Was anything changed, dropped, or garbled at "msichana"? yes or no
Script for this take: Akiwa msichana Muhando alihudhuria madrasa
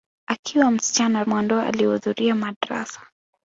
no